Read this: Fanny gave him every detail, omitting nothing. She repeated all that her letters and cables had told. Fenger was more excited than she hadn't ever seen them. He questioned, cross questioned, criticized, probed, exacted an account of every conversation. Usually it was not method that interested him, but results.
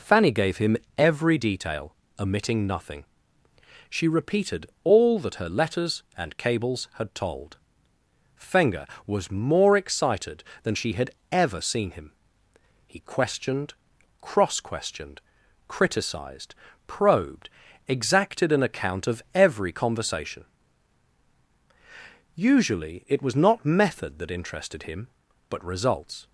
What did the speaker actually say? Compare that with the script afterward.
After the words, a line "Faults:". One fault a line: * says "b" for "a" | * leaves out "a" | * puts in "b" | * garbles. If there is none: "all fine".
Fanny gave him every detail, omitting nothing. She repeated all that her letters and cables had told. Fenger was more excited than she had ever seen him. He questioned, cross questioned, criticized, probed, exacted an account of every conversation. Usually it was not method that interested him, but results.
Faults:
* says "had" for "hadn't"
* says "him" for "them"